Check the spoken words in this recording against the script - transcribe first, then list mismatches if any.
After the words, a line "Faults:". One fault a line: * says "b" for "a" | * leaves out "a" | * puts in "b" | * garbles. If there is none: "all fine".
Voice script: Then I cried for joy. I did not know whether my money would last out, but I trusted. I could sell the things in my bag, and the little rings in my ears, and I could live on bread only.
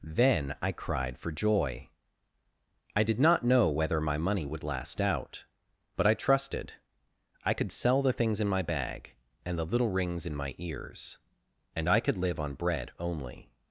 Then I cried for joy. I did not know whether my money would last out, but I trusted. I could sell the things in my bag, and the little rings in my ears, and I could live on bread only.
Faults:
all fine